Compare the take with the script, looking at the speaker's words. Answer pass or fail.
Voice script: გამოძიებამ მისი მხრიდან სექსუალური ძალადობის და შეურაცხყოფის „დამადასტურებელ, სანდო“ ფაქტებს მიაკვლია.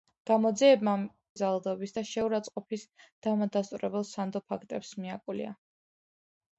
fail